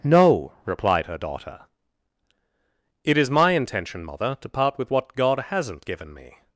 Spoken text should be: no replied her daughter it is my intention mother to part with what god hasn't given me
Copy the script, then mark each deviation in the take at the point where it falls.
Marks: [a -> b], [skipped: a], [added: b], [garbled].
no replied her daughter it is my intention mother to part with what god hasn't given me